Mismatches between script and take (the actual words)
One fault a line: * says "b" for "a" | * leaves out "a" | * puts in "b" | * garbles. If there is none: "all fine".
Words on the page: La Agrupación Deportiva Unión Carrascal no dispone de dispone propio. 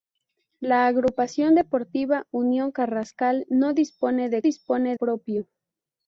all fine